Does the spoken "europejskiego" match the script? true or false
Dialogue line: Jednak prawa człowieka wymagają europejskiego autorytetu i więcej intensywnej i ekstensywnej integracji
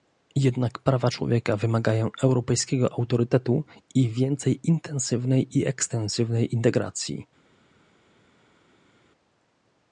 true